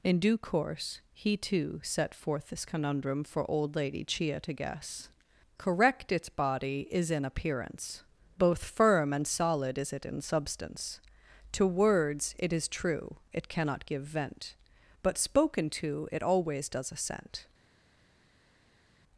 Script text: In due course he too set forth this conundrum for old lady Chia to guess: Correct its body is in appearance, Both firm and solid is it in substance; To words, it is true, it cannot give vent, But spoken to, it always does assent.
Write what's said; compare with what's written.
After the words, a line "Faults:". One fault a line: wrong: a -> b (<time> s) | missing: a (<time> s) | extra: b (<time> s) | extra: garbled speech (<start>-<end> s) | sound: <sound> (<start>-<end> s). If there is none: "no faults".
In due course he too set forth this conundrum for old lady Chia to guess: Correct its body is in appearance, Both firm and solid is it in substance; To words, it is true, it cannot give vent, But spoken to, it always does assent.
Faults:
no faults